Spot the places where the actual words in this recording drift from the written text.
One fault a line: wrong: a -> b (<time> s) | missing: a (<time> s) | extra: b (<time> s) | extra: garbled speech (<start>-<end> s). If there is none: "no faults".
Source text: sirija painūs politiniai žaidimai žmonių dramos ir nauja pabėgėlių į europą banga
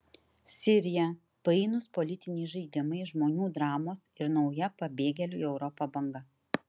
no faults